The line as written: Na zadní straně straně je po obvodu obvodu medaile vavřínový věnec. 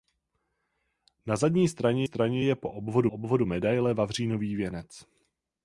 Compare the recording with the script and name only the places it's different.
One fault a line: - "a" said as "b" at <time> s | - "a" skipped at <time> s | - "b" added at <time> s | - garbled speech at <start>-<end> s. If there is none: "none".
none